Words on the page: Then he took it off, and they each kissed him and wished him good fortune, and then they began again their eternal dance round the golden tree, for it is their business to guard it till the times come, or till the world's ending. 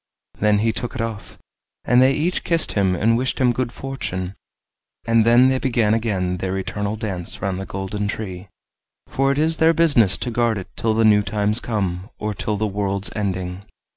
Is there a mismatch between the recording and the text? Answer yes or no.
yes